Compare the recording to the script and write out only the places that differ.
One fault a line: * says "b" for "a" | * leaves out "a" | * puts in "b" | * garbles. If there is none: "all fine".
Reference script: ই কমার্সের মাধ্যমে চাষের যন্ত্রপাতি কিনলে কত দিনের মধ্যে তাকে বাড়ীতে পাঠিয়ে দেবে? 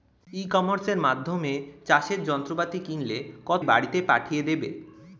* leaves out "দিনের মধ্যে তাকে"